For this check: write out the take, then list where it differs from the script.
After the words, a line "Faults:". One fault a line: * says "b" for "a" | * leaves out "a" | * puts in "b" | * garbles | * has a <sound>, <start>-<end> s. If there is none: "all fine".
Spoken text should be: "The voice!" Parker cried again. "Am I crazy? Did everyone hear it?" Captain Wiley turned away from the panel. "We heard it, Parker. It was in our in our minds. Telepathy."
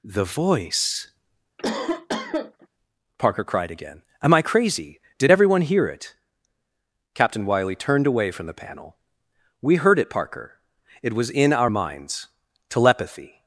"The voice!" Parker cried again. "Am I crazy? Did everyone hear it?" Captain Wiley turned away from the panel. "We heard it, Parker. It was in our minds. Telepathy."
Faults:
* has a cough, 1.6-2.7 s
* leaves out "in our"